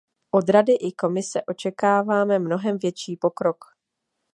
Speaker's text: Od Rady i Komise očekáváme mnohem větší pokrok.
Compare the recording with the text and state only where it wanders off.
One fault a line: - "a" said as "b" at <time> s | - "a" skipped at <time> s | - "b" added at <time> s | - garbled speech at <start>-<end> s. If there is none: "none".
none